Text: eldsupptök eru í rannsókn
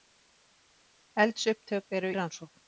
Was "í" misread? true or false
true